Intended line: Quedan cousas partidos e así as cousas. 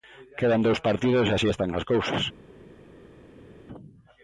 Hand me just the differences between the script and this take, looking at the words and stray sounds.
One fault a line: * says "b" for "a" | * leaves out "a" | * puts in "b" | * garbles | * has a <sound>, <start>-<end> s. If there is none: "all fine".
* says "dous" for "cousas"
* puts in "están"